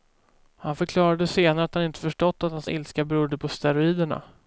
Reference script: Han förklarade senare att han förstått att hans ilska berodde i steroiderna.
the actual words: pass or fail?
fail